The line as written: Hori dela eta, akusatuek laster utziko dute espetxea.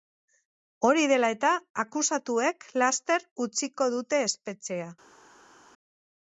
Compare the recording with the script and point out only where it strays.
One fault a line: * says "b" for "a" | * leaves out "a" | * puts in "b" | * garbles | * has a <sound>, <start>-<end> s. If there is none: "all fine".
all fine